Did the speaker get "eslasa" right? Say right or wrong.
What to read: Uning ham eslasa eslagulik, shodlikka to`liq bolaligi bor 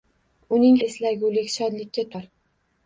wrong